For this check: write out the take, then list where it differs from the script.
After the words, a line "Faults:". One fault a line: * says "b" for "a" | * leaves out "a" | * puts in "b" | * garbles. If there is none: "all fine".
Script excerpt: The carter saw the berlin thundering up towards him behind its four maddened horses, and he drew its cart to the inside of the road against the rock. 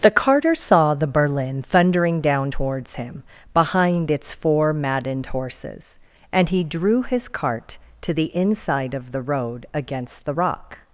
The carter saw the berlin thundering down towards him behind its four maddened horses, and he drew his cart to the inside of the road against the rock.
Faults:
* says "down" for "up"
* says "his" for "its"